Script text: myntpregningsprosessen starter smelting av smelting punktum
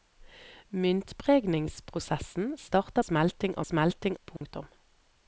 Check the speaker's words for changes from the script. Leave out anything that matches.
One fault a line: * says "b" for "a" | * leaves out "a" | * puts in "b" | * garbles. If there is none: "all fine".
all fine